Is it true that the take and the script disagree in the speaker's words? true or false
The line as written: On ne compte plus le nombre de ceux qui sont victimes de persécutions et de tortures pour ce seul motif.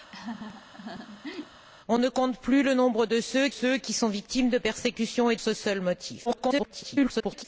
true